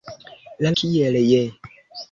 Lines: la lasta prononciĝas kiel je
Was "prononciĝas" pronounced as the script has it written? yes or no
no